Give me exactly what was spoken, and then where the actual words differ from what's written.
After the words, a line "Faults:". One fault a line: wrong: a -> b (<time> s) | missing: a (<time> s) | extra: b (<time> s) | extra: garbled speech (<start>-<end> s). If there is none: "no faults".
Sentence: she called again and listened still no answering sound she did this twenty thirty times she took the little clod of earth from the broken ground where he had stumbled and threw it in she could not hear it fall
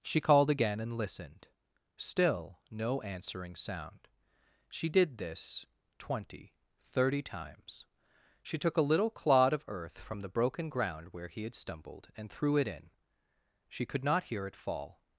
she called again and listened still no answering sound she did this twenty thirty times she took a little clod of earth from the broken ground where he had stumbled and threw it in she could not hear it fall
Faults:
wrong: the -> a (8.8 s)